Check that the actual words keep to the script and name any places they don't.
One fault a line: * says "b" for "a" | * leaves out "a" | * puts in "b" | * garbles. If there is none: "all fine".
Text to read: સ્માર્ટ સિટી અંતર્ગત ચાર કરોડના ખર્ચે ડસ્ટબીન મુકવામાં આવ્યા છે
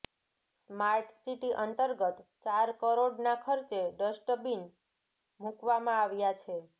all fine